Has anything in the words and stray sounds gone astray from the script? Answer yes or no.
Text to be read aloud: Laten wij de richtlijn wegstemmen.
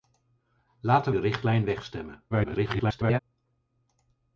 yes